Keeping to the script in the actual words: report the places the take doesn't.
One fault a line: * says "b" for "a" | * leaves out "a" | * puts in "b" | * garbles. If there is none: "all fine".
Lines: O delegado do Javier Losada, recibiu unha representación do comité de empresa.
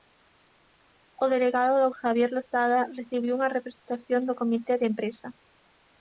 all fine